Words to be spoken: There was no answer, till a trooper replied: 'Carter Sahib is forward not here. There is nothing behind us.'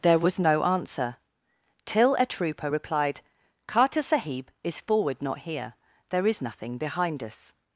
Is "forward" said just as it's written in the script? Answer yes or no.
yes